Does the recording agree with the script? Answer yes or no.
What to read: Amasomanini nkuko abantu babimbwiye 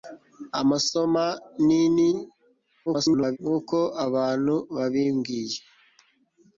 no